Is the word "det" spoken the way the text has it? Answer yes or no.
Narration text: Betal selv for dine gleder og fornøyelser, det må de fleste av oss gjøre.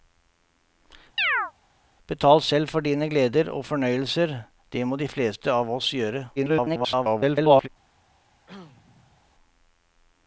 yes